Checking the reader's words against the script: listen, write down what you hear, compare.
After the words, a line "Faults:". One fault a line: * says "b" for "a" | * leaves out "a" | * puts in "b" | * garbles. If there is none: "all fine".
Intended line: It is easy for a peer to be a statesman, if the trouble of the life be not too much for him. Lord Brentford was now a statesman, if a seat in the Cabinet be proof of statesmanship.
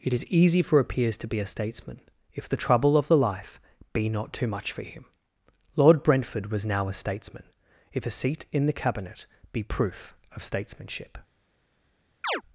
It is easy for a peers to be a statesman, if the trouble of the life be not too much for him. Lord Brentford was now a statesman, if a seat in the Cabinet be proof of statesmanship.
Faults:
* says "peers" for "peer"